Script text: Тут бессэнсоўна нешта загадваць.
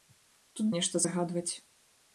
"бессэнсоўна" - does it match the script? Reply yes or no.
no